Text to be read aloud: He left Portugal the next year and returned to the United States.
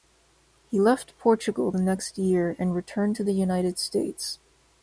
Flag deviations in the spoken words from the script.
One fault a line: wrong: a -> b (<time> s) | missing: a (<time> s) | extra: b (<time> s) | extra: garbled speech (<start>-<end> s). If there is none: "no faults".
no faults